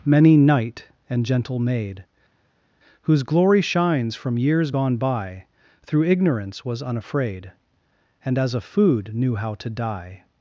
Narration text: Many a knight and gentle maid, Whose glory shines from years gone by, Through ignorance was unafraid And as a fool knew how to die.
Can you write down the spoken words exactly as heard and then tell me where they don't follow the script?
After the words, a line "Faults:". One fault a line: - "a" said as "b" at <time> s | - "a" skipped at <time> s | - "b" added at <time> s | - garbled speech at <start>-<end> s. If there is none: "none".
Many knight and gentle maid, Whose glory shines from years gone by, Through ignorance was unafraid And as a food knew how to die.
Faults:
- "a" skipped at 0.3 s
- "fool" said as "food" at 8.6 s